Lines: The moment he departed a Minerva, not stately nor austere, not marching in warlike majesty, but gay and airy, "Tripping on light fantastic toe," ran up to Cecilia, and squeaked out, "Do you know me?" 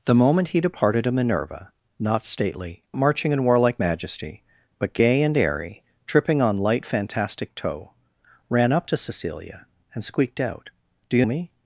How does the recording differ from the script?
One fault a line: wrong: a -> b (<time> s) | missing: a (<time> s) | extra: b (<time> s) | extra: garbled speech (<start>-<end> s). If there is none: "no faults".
missing: nor austere not (2.8 s)
missing: know (11.3 s)